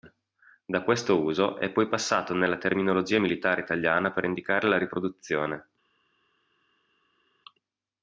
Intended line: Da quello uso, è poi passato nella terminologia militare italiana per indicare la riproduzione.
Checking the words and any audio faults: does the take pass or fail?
fail